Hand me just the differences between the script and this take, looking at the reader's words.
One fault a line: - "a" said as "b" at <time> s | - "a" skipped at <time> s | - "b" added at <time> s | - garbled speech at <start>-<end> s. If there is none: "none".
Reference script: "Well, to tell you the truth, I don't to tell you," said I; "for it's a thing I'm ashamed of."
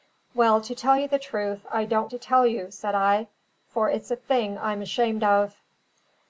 none